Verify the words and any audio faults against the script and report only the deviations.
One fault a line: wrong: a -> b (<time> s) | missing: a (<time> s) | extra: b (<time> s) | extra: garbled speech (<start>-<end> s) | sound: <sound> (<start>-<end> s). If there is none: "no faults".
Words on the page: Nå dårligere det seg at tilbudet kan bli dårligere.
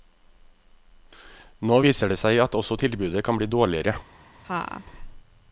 wrong: dårligere -> viser (1.8 s)
extra: også (2.5 s)
sound: laugh (4.4-4.8 s)